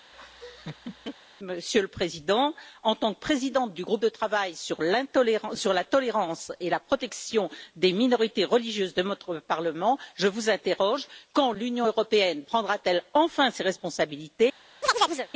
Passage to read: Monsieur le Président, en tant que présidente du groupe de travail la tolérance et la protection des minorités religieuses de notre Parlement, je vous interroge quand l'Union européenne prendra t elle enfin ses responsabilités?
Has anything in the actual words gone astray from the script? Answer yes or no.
yes